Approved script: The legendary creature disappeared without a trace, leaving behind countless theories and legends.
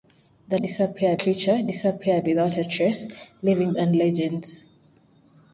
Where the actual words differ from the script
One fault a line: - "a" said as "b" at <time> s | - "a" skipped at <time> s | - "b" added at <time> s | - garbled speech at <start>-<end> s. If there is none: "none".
- "legendary" said as "disappeared" at 0.6 s
- "behind countless theories" skipped at 3.7 s